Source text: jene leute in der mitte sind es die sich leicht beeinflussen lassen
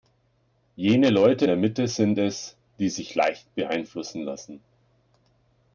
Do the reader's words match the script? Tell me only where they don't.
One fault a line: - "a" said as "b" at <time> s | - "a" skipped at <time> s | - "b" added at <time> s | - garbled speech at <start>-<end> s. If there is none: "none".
- "in" skipped at 1.4 s